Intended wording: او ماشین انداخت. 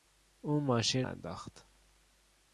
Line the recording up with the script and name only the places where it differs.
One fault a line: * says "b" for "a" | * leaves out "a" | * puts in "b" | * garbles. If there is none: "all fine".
all fine